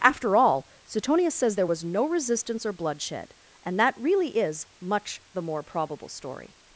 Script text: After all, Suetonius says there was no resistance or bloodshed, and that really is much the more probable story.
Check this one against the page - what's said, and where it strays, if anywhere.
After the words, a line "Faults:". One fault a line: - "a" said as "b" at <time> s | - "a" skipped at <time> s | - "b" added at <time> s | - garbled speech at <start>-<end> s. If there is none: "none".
After all, Suetonius says there was no resistance or bloodshed, and that really is much the more probable story.
Faults:
none